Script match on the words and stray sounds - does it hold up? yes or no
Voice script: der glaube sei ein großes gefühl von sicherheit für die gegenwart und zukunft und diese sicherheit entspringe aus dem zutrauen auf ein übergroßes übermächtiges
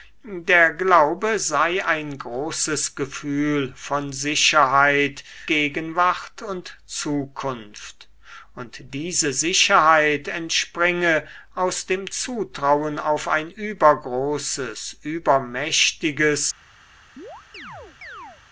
no